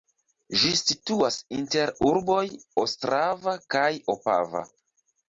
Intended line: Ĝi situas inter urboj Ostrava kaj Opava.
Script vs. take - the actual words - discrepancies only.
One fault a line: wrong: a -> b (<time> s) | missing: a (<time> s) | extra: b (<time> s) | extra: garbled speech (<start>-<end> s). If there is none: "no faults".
no faults